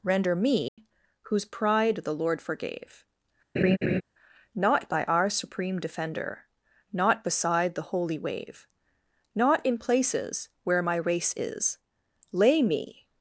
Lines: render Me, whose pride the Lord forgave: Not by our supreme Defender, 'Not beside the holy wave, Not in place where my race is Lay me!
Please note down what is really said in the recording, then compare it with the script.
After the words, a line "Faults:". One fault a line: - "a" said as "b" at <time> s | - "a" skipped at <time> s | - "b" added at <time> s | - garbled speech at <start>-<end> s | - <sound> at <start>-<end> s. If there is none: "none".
render Me, whose pride the Lord forgave: Not by our supreme Defender, 'Not beside the holy wave, Not in places where my race is Lay me!
Faults:
- dropout at 0.7-0.8 s
- laugh at 3.6-4.0 s
- "place" said as "places" at 9.8 s